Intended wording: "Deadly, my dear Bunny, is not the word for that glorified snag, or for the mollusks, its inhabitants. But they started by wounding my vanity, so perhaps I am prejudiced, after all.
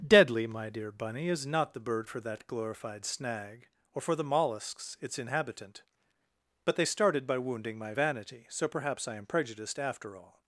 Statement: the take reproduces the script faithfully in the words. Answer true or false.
false